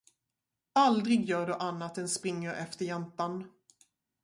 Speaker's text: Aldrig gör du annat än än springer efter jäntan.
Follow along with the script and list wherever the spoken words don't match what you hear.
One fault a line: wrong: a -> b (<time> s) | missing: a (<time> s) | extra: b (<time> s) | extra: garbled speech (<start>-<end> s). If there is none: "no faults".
missing: än (2.1 s)